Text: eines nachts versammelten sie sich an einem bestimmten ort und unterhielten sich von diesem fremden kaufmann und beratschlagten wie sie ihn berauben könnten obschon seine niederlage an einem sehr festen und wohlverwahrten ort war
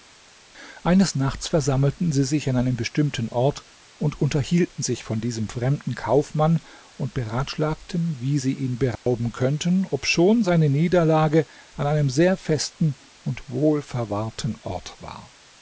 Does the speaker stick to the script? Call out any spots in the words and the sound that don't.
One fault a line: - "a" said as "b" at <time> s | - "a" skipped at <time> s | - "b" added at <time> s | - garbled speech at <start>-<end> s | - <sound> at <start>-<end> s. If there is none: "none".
- dropout at 9.0-9.1 s